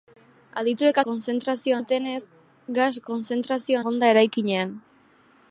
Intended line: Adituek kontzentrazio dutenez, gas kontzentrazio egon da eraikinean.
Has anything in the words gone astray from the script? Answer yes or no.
no